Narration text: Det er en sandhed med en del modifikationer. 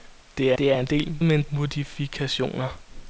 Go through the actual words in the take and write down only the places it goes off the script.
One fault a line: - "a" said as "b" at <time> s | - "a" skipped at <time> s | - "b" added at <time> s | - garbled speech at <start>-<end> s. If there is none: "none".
- "det" added at 0.6 s
- "sandhed" said as "del" at 0.9 s
- "del" skipped at 1.5 s